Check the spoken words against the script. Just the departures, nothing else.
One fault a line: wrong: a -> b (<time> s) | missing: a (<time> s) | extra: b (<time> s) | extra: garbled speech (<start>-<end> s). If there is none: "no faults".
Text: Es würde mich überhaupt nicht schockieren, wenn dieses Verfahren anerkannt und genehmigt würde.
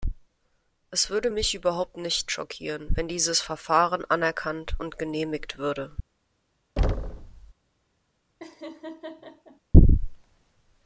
no faults